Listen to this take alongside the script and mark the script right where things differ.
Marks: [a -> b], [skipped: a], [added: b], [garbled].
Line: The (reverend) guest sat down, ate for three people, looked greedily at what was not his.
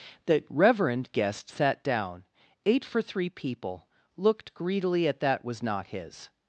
The (reverend) guest sat down, ate for three people, looked greedily at [what -> that] was not his.